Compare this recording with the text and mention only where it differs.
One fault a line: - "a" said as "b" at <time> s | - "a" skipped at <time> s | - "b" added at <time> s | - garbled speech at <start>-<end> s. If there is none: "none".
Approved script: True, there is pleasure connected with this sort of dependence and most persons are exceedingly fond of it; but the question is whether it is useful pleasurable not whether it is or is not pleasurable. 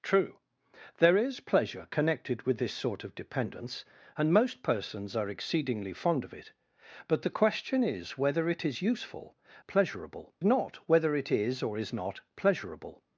none